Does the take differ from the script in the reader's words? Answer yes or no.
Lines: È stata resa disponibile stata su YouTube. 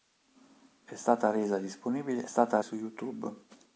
no